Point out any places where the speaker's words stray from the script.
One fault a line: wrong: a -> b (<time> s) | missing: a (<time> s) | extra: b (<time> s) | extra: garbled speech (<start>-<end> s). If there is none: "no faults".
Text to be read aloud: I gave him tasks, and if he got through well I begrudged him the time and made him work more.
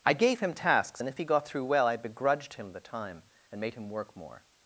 no faults